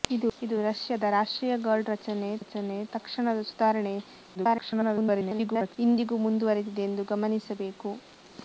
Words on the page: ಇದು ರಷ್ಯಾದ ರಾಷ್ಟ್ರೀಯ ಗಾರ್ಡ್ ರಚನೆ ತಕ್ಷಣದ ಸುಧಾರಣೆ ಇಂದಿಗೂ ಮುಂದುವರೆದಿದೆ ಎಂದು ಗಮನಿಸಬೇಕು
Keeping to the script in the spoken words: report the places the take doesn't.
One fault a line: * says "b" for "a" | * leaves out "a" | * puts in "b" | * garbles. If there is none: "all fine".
* puts in "ರಚನೆ"
* garbles